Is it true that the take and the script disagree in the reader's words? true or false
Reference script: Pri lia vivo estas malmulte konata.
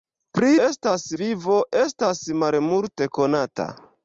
true